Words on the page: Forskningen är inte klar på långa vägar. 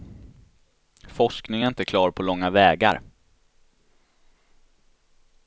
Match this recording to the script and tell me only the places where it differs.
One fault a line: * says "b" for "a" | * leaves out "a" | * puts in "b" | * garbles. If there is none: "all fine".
all fine